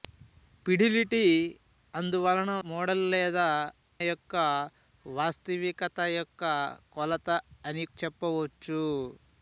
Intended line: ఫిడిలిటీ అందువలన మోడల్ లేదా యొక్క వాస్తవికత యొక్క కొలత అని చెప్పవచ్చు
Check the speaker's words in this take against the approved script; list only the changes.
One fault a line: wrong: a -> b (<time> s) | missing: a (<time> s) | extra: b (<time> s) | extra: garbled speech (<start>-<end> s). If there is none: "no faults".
no faults